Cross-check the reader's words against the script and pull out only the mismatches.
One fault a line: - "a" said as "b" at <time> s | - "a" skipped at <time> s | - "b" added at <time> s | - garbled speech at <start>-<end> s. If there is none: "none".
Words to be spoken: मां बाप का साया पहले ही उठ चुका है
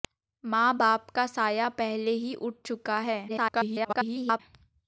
- garbled speech at 3.3-4.4 s